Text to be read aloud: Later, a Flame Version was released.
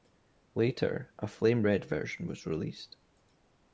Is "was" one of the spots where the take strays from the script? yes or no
no